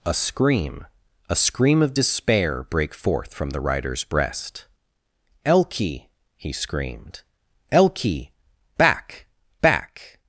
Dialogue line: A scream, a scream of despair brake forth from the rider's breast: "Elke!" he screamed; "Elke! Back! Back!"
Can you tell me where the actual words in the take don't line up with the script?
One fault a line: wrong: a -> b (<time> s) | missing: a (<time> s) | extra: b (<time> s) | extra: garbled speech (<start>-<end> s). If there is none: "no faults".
no faults